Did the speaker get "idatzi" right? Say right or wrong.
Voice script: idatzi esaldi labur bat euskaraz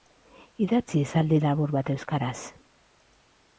right